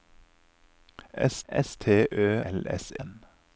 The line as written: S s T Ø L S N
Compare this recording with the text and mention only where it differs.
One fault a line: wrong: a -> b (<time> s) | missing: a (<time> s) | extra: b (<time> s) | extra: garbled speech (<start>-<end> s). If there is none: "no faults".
no faults